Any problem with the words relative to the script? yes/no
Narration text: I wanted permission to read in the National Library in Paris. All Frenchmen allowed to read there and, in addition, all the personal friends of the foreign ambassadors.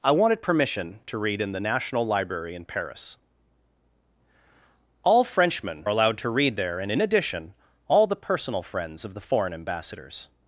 no